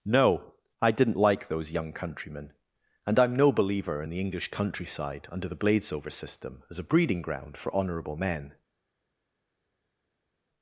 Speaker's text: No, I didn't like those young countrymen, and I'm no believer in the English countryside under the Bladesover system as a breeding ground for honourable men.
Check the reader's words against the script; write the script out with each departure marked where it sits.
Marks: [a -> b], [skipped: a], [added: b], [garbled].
No, I didn't like those young countrymen, and I'm no believer in the English countryside under the Bladesover system as a breeding ground for honourable men.